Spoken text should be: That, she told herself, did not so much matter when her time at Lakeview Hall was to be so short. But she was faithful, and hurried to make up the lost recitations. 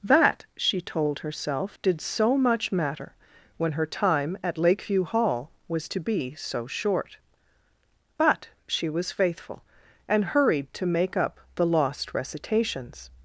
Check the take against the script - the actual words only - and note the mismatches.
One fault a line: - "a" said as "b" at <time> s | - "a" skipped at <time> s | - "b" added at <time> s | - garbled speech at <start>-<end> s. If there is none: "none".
- "not" skipped at 2.0 s